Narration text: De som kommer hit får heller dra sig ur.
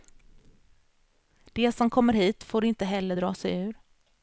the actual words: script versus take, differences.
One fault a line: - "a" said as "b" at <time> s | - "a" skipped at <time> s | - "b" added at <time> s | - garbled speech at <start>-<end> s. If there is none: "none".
- "inte" added at 2.6 s